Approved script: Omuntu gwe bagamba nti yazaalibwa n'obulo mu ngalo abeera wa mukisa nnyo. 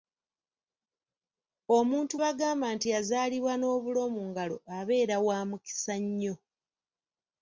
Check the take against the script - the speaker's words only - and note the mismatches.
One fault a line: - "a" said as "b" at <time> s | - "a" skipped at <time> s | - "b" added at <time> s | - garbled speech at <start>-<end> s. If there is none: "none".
- "gwe" skipped at 2.1 s